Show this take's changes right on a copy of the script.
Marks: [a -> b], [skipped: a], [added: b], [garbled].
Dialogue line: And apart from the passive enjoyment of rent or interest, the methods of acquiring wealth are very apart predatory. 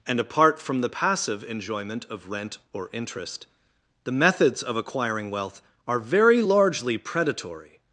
And apart from the passive enjoyment of rent or interest, the methods of acquiring wealth are very [apart -> largely] predatory.